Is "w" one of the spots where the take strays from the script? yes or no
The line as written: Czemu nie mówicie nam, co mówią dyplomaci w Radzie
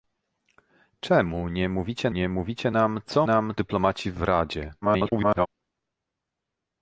no